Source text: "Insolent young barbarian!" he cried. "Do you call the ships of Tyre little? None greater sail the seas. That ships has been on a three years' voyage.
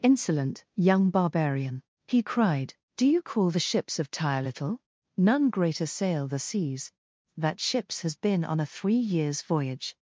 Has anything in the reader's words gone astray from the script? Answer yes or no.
no